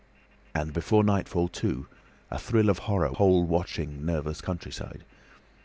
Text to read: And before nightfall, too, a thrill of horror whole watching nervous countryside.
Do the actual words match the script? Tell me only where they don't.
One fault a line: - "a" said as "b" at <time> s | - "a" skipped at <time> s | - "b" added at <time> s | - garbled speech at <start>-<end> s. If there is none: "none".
none